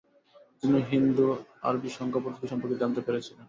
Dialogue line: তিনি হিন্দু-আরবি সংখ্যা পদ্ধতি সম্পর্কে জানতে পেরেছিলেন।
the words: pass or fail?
pass